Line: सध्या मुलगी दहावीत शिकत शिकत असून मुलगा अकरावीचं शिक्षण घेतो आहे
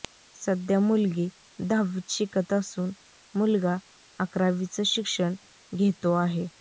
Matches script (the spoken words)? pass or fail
fail